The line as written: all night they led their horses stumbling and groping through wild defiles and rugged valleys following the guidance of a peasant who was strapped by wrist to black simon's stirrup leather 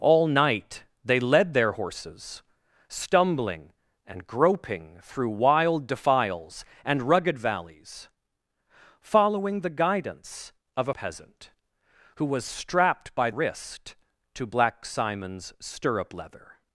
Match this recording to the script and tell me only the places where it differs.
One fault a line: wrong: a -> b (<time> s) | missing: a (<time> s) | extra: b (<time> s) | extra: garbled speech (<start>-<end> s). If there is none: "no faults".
no faults